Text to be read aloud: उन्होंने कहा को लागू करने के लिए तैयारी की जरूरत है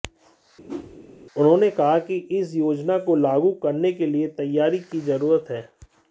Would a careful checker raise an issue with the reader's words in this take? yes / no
yes